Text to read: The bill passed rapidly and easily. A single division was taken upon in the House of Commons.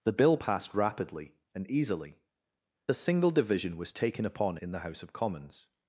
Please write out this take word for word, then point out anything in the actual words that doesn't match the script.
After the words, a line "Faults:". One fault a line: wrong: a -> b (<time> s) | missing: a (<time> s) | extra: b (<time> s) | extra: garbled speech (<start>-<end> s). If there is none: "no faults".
The bill passed rapidly and easily. A single division was taken upon in the House of Commons.
Faults:
no faults